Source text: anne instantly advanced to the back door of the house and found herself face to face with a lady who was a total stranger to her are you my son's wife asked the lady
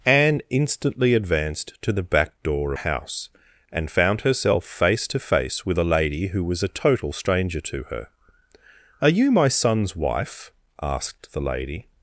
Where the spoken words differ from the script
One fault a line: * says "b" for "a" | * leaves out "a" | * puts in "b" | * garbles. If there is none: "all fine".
* leaves out "of the"